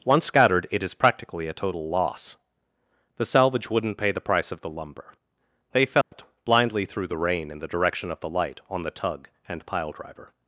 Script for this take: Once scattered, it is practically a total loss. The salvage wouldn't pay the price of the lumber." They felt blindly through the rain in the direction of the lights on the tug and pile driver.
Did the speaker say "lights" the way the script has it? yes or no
no